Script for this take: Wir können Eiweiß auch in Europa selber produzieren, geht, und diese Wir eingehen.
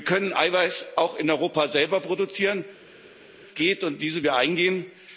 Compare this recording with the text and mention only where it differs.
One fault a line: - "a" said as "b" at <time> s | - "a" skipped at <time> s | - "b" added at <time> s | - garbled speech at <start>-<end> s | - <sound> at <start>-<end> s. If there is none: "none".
none